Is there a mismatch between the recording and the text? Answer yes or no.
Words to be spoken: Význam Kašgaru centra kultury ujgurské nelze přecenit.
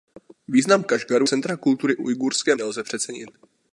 no